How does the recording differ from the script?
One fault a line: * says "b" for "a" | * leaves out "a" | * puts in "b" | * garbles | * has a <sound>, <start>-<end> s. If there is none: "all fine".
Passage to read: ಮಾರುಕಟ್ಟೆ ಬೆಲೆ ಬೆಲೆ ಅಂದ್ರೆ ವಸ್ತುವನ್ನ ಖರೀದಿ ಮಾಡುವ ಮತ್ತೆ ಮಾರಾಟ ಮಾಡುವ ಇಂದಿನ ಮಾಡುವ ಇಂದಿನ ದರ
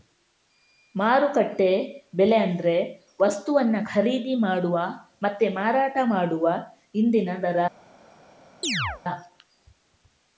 * leaves out "ಬೆಲೆ"
* leaves out "ಮಾಡುವ ಇಂದಿನ"
* has a chirp, 8.6-9.0 s